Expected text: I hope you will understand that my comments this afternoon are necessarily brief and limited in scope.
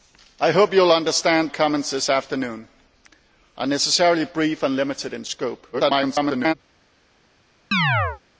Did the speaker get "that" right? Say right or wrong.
wrong